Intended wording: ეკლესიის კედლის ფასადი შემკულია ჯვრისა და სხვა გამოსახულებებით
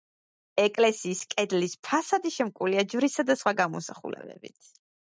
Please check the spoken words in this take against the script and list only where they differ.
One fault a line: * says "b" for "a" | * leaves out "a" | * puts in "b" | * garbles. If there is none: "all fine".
all fine